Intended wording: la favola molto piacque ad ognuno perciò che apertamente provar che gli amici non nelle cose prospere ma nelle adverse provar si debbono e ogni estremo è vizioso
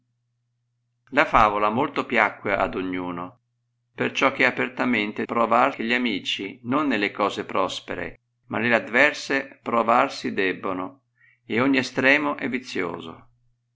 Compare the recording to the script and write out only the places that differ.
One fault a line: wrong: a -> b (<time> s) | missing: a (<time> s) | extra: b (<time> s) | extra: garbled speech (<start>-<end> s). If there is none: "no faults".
no faults